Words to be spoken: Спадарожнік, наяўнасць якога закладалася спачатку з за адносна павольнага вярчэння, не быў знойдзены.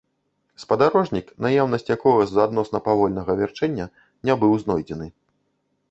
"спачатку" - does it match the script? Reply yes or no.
no